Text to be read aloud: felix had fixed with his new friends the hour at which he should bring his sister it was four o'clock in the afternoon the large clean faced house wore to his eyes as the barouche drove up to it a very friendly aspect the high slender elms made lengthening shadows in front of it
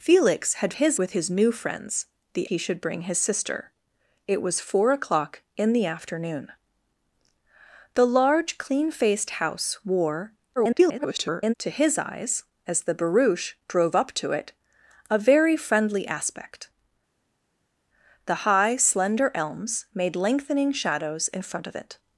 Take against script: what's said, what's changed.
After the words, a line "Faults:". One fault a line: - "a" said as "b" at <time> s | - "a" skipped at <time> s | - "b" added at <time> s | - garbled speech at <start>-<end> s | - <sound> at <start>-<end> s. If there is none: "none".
felix had his with his new friends the he should bring his sister it was four o'clock in the afternoon the large clean faced house wore [garbled] to his eyes as the barouche drove up to it a very friendly aspect the high slender elms made lengthening shadows in front of it
Faults:
- "fixed" said as "his" at 0.7 s
- "hour at which" skipped at 2.5 s
- garbled speech at 10.6-11.5 s